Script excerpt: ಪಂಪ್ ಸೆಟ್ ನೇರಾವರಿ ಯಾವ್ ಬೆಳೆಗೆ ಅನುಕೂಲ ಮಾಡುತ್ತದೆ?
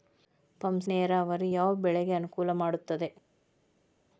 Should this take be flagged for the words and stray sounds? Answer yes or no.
yes